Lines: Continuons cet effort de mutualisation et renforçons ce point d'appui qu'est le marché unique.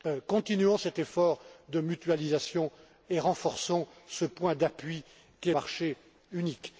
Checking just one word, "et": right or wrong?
right